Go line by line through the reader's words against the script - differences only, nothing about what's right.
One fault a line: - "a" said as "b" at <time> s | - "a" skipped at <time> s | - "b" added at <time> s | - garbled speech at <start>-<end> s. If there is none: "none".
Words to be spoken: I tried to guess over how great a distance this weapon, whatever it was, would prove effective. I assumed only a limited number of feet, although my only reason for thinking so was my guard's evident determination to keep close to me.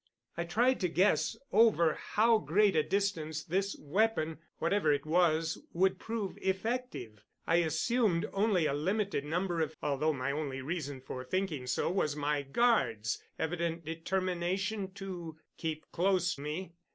- "feet" skipped at 9.7 s
- "to" skipped at 16.3 s